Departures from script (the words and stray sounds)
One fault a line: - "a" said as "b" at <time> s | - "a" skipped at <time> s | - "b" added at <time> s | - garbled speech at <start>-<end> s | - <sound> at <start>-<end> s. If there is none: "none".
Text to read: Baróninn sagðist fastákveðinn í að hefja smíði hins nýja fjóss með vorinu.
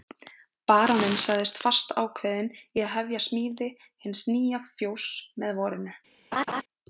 - laugh at 6.3-6.6 s